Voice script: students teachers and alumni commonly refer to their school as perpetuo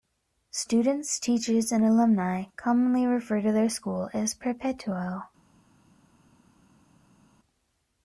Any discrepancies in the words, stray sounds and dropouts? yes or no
no